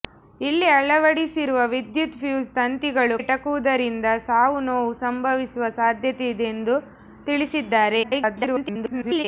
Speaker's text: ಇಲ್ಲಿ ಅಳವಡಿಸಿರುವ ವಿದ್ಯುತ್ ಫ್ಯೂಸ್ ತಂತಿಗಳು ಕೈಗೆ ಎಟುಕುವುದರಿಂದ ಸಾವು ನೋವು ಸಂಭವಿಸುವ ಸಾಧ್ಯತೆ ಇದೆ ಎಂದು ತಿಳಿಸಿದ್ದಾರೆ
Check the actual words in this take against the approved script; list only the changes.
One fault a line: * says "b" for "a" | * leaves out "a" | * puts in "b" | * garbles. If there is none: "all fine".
* leaves out "ಕೈಗೆ"
* garbles